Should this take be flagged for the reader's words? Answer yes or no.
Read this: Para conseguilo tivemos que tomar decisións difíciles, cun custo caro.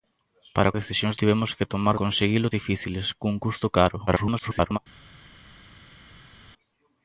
yes